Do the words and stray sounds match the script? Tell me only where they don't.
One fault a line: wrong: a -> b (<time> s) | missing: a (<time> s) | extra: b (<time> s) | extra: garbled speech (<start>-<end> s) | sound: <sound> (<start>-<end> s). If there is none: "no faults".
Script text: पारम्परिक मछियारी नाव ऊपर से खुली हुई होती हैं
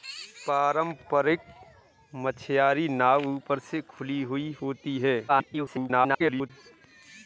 extra: garbled speech (5.3-6.5 s)